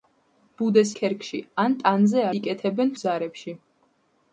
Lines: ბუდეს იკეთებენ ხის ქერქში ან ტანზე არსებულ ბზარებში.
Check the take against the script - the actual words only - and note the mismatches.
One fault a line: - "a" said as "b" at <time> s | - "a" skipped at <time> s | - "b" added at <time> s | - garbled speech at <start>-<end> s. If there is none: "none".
- "იკეთებენ ხის" skipped at 0.9 s
- "არსებულ" said as "იკეთებენ" at 2.4 s